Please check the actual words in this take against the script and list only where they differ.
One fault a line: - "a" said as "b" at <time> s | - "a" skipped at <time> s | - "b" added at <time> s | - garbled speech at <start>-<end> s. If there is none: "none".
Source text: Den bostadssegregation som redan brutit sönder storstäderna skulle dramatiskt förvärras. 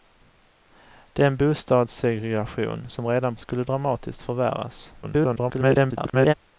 - "brutit sönder storstäderna" skipped at 3.4 s
- garbled speech at 5.0-6.3 s